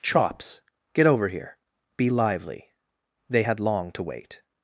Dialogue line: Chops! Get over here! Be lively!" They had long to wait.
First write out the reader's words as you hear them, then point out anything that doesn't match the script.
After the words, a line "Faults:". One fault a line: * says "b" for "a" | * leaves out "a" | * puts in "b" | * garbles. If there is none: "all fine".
Chops! Get over here! Be lively!" They had long to wait.
Faults:
all fine